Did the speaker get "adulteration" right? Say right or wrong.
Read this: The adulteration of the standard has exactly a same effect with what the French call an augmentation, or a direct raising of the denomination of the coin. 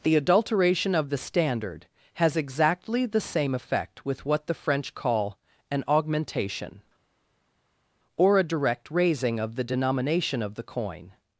right